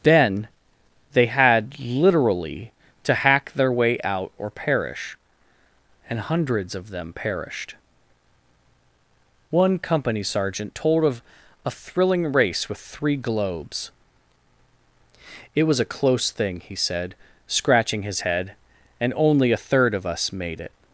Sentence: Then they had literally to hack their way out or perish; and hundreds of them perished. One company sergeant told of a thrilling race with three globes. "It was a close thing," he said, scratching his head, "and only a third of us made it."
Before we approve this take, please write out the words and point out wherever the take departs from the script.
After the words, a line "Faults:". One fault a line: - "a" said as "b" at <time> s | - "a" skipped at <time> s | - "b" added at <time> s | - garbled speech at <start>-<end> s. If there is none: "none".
Then they had literally to hack their way out or perish; and hundreds of them perished. One company sergeant told of a thrilling race with three globes. "It was a close thing," he said, scratching his head, "and only a third of us made it."
Faults:
none